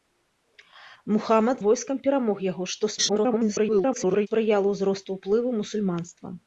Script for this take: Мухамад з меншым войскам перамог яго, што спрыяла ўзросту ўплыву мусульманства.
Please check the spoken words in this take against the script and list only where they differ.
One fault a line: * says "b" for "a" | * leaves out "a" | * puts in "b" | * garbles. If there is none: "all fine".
* leaves out "з меншым"
* garbles